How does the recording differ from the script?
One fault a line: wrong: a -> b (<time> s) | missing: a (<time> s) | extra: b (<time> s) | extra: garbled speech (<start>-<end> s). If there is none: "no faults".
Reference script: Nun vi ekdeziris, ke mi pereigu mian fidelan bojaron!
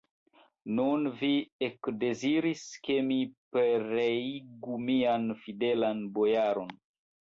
no faults